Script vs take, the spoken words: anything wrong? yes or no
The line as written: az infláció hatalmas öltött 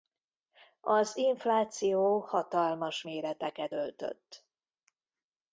yes